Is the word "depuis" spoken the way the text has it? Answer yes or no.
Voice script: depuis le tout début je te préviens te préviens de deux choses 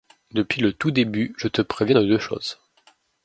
yes